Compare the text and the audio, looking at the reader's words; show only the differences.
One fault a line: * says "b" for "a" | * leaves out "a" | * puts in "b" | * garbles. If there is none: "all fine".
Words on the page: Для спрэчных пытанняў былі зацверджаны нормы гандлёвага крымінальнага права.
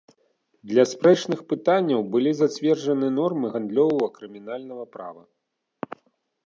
all fine